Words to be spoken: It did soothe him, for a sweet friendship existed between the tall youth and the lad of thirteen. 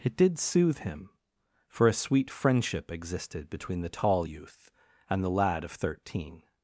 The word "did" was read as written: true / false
true